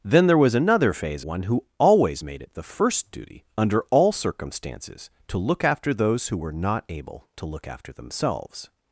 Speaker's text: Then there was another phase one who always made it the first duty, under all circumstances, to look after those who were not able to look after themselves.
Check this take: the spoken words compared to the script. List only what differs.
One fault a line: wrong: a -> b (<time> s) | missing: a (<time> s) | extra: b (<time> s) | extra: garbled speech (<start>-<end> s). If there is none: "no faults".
no faults